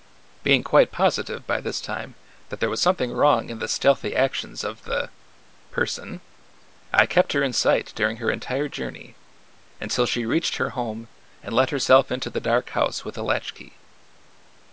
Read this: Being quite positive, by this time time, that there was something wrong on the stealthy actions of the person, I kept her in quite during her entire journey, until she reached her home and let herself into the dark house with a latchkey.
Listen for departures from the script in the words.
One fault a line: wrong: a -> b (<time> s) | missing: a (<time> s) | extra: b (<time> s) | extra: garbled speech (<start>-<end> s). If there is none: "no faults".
missing: time (2.1 s)
wrong: on -> in (3.5 s)
wrong: quite -> sight (7.5 s)